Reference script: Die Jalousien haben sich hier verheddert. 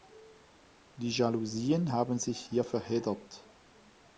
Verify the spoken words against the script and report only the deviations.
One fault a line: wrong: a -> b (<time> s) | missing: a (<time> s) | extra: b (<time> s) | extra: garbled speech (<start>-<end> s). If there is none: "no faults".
no faults